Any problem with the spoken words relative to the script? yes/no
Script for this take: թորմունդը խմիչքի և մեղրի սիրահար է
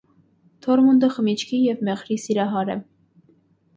no